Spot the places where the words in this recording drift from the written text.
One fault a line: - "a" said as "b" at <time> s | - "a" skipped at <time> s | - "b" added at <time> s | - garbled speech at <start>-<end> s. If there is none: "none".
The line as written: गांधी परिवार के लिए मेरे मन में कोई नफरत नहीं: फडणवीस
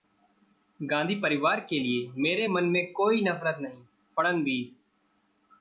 none